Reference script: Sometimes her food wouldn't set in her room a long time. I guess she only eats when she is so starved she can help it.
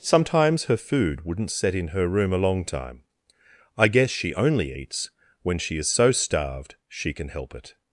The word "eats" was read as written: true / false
true